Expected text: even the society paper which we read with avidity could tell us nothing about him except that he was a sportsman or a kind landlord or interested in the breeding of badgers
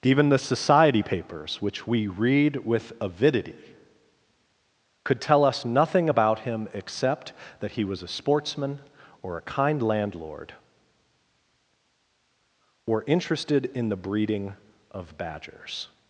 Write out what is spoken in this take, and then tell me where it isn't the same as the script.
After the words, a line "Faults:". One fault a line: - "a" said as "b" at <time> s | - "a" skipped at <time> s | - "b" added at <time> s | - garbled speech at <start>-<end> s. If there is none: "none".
even the society papers which we read with avidity could tell us nothing about him except that he was a sportsman or a kind landlord or interested in the breeding of badgers
Faults:
- "paper" said as "papers" at 1.0 s